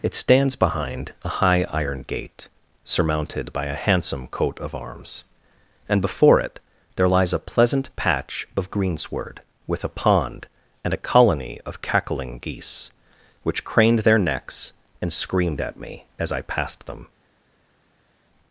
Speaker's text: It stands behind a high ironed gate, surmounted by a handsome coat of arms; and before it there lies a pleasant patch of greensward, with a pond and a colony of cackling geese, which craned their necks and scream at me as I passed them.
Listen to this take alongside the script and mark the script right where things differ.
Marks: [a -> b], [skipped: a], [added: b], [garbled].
It stands behind a high [ironed -> iron] gate, surmounted by a handsome coat of arms; and before it there lies a pleasant patch of greensward, with a pond and a colony of cackling geese, which craned their necks and [scream -> screamed] at me as I passed them.